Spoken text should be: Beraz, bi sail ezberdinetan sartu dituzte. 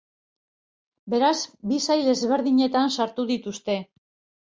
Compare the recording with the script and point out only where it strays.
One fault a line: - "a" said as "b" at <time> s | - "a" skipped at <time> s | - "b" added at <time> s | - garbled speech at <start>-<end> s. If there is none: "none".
none